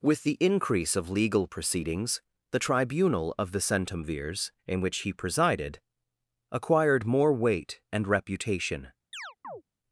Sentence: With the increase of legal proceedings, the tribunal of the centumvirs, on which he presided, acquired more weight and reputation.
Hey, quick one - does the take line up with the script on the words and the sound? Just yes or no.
no